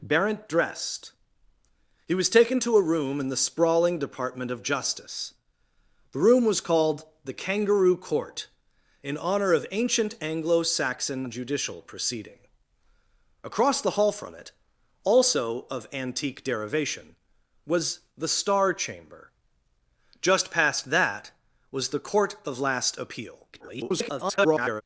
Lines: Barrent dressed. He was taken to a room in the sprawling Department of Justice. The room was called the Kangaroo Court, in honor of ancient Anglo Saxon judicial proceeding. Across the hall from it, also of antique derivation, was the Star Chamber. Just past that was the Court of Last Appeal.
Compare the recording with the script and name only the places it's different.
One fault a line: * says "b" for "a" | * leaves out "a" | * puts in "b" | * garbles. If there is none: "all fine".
* garbles